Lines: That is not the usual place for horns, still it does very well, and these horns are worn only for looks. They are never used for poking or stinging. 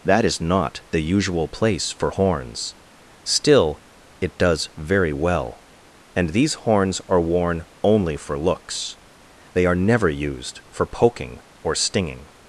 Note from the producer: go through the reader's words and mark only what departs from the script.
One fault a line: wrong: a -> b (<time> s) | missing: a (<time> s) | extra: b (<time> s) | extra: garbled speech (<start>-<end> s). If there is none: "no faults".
no faults